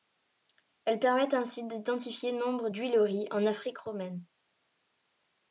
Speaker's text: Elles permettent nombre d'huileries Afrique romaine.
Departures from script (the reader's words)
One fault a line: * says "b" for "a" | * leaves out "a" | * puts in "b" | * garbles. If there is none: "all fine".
* puts in "ainsi d'identifier"
* puts in "en"